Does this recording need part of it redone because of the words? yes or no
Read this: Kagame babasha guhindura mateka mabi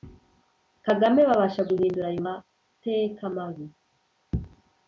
yes